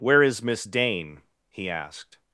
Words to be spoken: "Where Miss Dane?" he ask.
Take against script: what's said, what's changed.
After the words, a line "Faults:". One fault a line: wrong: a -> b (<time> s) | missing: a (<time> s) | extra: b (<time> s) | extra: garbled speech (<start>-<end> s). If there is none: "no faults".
"Where is Miss Dane?" he asked.
Faults:
extra: is (0.2 s)
wrong: ask -> asked (1.7 s)